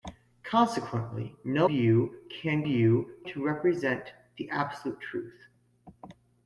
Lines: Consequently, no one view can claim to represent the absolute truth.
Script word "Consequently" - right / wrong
right